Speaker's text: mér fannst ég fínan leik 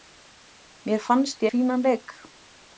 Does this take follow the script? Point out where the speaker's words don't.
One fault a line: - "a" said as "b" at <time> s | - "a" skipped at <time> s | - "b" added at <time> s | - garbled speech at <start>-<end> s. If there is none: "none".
none